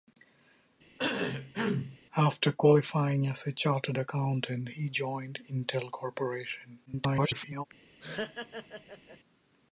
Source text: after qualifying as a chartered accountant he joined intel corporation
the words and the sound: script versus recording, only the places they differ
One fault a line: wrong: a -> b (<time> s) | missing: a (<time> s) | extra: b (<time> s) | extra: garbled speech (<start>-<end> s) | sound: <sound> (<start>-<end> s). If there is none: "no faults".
sound: cough (1.0-2.0 s)
extra: garbled speech (6.9-7.7 s)
sound: laugh (8.0-9.2 s)